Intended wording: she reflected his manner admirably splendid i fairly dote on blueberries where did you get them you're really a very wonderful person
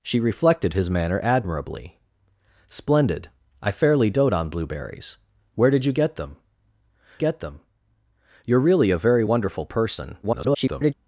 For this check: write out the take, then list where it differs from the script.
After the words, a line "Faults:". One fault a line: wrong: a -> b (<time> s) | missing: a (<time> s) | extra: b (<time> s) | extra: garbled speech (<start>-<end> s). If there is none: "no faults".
she reflected his manner admirably splendid i fairly dote on blueberries where did you get them get them you're really a very wonderful person [garbled]
Faults:
extra: get them (7.2 s)
extra: garbled speech (10.2-10.9 s)